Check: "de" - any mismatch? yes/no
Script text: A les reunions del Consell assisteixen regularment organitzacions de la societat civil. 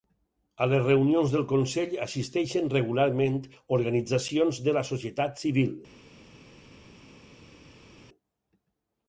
no